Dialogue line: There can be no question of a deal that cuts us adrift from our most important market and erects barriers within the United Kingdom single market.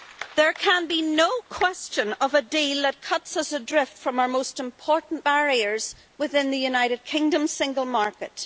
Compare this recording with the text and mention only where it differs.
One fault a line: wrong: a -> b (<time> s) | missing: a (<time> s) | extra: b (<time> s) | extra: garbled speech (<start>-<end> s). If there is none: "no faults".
missing: market and erects (5.2 s)